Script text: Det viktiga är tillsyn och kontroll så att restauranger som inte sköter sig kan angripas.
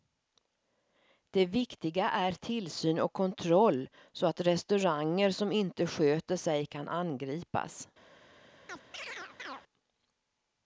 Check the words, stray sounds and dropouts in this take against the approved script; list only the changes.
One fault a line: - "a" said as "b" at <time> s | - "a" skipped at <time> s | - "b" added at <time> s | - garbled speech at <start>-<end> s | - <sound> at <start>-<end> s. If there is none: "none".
- chirp at 8.7-9.6 s